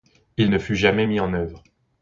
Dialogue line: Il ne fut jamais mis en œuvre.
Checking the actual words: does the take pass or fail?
pass